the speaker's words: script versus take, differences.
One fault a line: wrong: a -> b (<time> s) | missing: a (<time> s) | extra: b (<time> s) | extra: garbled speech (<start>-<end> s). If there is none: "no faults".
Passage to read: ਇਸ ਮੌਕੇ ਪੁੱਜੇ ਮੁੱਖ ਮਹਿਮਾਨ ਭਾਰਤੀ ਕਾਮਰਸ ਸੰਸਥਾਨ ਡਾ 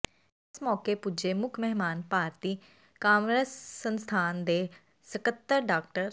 extra: ਦੇ ਸਕੱਤਰ (4.4 s)